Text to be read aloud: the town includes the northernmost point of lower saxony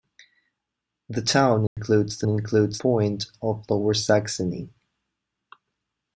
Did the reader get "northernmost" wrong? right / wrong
wrong